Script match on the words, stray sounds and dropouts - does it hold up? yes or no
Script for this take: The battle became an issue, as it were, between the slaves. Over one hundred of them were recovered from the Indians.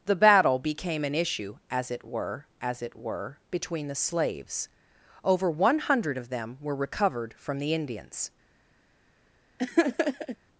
no